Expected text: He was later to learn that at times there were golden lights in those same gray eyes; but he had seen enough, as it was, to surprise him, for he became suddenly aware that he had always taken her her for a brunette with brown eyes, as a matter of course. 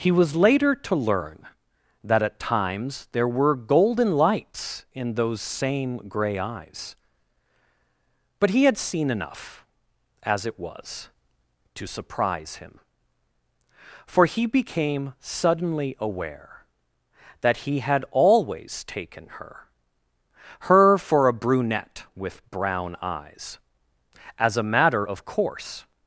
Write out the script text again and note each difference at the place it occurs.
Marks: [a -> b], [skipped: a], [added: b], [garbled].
He was later to learn that at times there were golden lights in those same gray eyes; but he had seen enough, as it was, to surprise him, for he became suddenly aware that he had always taken her her for a brunette with brown eyes, as a matter of course.